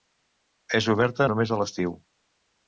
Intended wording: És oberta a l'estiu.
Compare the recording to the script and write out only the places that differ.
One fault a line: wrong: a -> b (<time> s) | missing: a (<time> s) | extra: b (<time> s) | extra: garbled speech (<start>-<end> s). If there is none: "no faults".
extra: només (1.3 s)